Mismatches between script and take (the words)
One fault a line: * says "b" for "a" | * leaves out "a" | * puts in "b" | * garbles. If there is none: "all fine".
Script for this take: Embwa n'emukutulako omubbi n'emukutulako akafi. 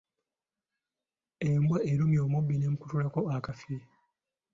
* says "erumye" for "n'emukutulako"